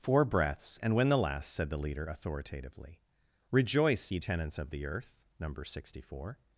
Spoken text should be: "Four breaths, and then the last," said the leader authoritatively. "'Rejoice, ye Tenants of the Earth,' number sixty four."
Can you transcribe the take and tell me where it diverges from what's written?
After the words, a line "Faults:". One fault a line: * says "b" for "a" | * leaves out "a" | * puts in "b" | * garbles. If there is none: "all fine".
"Four breaths, and when the last," said the leader authoritatively. "'Rejoice, ye Tenants of the Earth,' number sixty four."
Faults:
* says "when" for "then"